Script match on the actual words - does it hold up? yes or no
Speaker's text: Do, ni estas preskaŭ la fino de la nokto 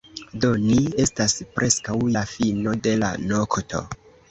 yes